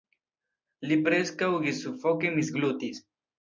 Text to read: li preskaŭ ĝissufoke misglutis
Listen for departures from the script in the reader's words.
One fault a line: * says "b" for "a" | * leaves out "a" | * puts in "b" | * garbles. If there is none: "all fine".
all fine